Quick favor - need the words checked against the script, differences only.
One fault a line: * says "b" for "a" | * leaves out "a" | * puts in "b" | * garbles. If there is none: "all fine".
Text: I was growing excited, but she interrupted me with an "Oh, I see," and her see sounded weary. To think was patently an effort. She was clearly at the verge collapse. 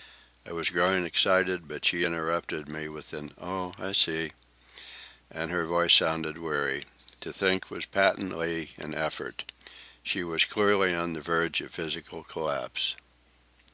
* says "voice" for "see"
* says "on" for "at"
* puts in "of physical"